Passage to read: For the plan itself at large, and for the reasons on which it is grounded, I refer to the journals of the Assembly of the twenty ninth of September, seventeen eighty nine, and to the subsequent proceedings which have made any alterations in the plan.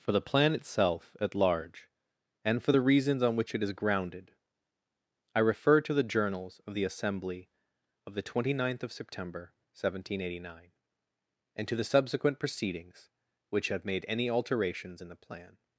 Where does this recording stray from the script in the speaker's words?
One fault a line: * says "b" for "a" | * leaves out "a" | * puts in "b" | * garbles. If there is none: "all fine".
all fine